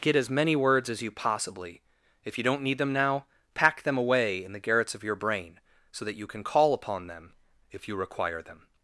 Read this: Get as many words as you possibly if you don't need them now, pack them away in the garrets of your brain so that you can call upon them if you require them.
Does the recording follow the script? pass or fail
pass